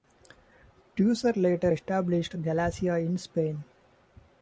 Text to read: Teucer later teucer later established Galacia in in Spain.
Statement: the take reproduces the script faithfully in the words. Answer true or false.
false